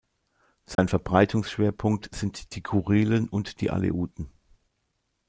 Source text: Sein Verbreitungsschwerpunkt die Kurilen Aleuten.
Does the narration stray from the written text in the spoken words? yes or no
yes